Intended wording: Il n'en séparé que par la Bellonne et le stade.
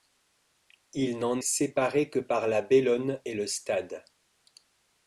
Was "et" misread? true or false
false